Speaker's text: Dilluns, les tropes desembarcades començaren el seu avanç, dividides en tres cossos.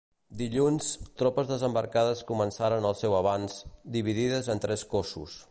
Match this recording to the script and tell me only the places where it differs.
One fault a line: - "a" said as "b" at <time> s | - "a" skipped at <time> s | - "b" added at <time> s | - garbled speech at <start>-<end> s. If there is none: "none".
- "les" skipped at 0.9 s